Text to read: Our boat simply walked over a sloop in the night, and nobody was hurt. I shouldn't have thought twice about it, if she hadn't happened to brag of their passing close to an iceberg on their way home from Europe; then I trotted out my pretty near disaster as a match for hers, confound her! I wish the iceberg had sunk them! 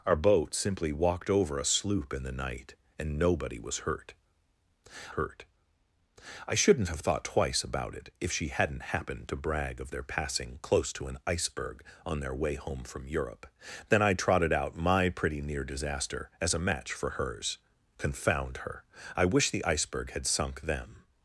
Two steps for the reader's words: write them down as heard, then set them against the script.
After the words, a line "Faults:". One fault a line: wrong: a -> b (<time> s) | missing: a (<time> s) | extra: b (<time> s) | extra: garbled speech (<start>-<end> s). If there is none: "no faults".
Our boat simply walked over a sloop in the night, and nobody was hurt hurt. I shouldn't have thought twice about it, if she hadn't happened to brag of their passing close to an iceberg on their way home from Europe; then I trotted out my pretty near disaster as a match for hers, confound her! I wish the iceberg had sunk them!
Faults:
extra: hurt (5.1 s)